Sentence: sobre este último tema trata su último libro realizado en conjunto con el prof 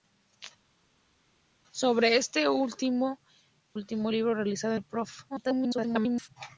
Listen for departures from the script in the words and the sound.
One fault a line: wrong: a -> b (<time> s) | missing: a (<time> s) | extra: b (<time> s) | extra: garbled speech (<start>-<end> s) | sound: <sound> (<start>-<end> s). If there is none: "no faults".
missing: tema trata su (3.2 s)
missing: en conjunto con (4.7 s)
extra: garbled speech (5.3-6.3 s)